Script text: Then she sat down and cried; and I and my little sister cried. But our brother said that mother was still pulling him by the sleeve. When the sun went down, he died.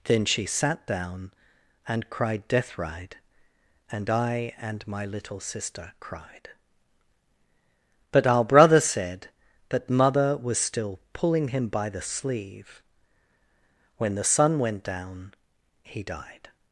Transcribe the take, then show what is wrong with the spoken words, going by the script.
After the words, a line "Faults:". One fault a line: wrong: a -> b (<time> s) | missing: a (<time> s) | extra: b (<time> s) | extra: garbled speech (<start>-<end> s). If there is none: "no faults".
Then she sat down and cried; death ride and I and my little sister cried. But our brother said that mother was still pulling him by the sleeve. When the sun went down, he died.
Faults:
extra: death ride (2.5 s)